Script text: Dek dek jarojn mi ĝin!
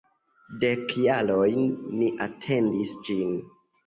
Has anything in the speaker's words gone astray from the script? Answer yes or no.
yes